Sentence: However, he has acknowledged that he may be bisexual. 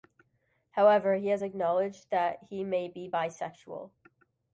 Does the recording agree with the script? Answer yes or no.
yes